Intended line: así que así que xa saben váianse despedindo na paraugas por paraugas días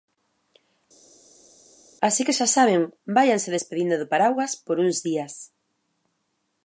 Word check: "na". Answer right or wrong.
wrong